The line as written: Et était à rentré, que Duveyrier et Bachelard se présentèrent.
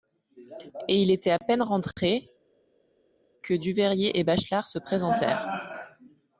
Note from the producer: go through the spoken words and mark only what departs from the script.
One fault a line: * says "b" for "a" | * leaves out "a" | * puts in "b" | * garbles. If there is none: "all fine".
* puts in "il"
* puts in "peine"